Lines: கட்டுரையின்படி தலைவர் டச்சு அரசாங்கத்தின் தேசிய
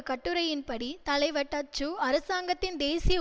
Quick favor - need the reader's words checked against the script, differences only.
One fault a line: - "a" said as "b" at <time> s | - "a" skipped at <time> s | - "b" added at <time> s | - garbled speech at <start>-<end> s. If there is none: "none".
none